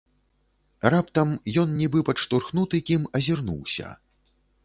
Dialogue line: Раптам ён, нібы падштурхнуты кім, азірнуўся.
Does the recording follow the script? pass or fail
pass